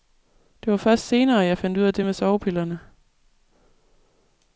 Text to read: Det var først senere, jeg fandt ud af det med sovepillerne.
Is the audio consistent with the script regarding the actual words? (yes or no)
yes